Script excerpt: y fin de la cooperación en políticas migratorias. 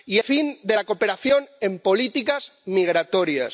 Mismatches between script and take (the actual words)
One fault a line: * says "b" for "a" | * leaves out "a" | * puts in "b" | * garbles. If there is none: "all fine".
all fine